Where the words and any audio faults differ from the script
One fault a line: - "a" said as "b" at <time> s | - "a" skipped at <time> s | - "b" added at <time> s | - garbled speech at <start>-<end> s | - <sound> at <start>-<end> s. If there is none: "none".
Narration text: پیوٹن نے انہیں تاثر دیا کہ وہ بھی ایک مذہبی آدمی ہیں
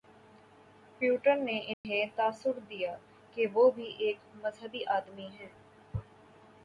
- dropout at 1.7-1.8 s